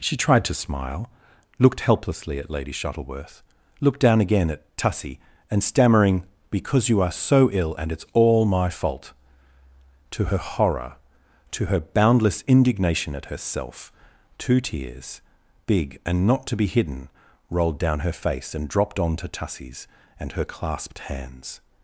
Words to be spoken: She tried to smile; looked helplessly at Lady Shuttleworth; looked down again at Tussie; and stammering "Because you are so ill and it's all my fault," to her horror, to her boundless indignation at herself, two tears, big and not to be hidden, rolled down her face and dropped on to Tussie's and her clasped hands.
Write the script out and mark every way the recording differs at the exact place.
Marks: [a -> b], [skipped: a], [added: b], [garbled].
She tried to smile; looked helplessly at Lady Shuttleworth; looked down again at Tussie; and stammering "Because you are so ill and it's all my fault," to her horror, to her boundless indignation at herself, two tears, big and not to be hidden, rolled down her face and dropped on to Tussie's and her clasped hands.